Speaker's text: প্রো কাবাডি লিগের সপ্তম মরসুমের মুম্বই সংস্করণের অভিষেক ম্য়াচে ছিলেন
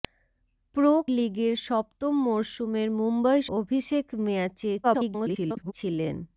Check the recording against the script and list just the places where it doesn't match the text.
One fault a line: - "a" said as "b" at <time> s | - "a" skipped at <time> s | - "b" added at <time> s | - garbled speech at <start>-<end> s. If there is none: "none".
- "কাবাডি" skipped at 0.9 s
- "সংস্করণের" skipped at 3.4 s
- garbled speech at 4.8-5.7 s